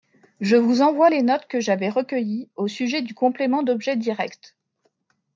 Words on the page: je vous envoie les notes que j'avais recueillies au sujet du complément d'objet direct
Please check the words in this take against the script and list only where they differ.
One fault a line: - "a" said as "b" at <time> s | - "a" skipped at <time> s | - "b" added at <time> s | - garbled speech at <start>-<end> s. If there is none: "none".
none